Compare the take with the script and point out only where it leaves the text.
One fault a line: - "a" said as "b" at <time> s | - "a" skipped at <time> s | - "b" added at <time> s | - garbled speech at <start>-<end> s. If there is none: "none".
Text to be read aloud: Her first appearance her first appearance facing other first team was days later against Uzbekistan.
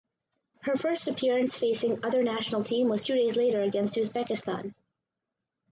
- "her first appearance" skipped at 1.6 s
- "first" said as "national" at 2.2 s
- "two" added at 3.0 s